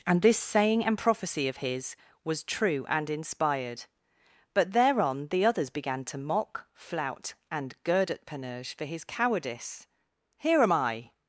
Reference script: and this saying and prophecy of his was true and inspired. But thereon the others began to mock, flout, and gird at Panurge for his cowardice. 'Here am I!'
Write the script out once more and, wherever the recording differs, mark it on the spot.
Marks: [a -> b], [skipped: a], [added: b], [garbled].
and this saying and prophecy of his was true and inspired. But thereon the others began to mock, flout, and gird at Panurge for his cowardice. 'Here am I!'